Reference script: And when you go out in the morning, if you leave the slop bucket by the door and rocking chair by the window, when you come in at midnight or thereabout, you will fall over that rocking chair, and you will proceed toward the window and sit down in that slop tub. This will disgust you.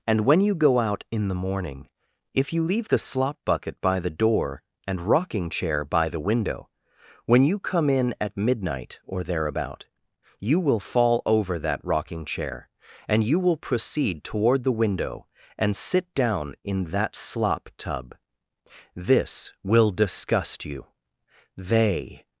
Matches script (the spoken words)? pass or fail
fail